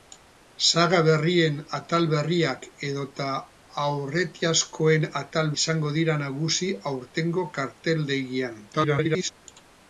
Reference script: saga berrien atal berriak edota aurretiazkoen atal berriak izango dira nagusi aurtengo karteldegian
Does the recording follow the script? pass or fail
fail